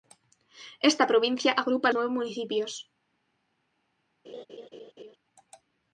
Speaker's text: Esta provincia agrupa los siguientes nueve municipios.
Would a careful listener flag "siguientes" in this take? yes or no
yes